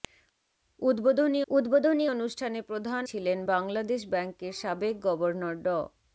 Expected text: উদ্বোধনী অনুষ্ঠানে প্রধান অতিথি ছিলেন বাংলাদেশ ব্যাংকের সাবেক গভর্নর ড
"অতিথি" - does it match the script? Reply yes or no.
no